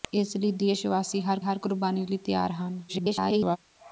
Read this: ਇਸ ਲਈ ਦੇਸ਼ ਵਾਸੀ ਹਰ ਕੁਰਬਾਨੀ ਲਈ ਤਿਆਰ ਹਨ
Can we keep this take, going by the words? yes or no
no